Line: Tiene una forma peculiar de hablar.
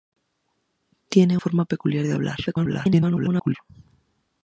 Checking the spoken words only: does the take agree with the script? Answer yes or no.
no